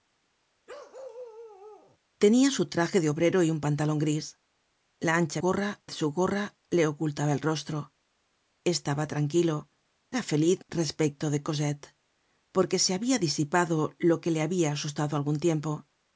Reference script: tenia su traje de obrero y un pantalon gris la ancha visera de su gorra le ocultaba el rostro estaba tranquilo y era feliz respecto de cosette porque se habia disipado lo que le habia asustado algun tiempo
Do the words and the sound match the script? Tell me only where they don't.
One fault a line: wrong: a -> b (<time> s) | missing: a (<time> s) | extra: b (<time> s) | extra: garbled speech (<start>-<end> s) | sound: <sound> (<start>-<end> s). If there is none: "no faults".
sound: bark (0.7-2.0 s)
wrong: visera -> gorra (5.4 s)
missing: y (9.7 s)